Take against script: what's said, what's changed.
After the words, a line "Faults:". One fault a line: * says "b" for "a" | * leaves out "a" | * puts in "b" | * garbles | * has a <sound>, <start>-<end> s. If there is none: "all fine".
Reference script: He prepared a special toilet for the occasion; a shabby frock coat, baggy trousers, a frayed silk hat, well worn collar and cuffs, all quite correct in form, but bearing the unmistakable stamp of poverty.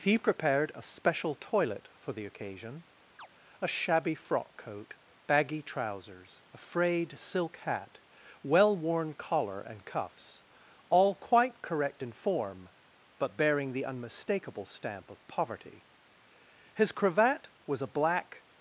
He prepared a special toilet for the occasion; a shabby frock coat, baggy trousers, a frayed silk hat, well worn collar and cuffs, all quite correct in form, but bearing the unmistakable stamp of poverty. His cravat was a black
Faults:
* has a chirp, 3.2-3.3 s
* puts in "His cravat was a black"